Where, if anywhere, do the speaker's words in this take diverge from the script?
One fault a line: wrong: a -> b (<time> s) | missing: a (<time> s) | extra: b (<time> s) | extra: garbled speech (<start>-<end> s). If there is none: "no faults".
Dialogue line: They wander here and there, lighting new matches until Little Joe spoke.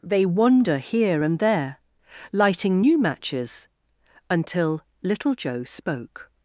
no faults